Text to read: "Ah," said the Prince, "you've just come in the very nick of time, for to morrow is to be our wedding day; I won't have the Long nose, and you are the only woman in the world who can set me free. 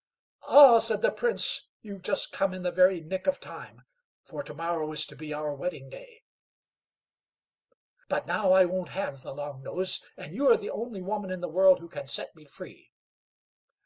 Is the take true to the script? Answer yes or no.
no